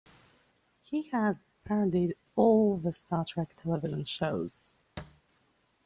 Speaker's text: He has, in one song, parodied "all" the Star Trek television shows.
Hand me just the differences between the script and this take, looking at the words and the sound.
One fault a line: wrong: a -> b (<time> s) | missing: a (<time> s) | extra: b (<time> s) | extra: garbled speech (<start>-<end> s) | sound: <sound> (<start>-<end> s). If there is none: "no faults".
missing: in one song (1.4 s)
sound: thud (5.0-5.2 s)